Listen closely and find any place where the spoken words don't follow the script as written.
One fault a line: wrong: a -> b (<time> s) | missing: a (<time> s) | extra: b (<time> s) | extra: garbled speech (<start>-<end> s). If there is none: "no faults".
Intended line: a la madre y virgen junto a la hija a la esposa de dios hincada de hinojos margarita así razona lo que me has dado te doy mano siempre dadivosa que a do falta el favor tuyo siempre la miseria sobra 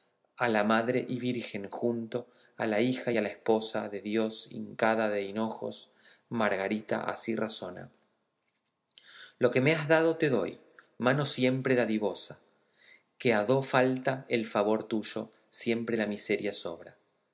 no faults